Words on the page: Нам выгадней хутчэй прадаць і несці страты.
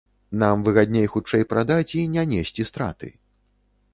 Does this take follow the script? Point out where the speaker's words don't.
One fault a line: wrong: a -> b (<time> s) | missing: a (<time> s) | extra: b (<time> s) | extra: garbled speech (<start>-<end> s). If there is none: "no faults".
extra: не (2.1 s)